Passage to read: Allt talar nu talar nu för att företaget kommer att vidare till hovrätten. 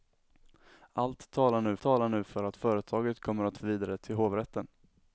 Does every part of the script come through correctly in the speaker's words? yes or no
yes